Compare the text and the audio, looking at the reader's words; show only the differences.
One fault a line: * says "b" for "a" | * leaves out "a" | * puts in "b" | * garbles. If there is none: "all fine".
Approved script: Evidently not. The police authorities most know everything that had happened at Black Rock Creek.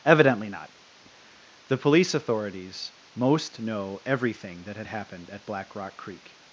all fine